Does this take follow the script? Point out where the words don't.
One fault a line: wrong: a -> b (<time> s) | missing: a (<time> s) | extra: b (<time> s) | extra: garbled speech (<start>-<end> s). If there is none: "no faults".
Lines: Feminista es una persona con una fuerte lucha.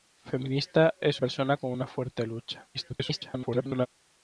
missing: una (1.2 s)
extra: garbled speech (2.7-3.9 s)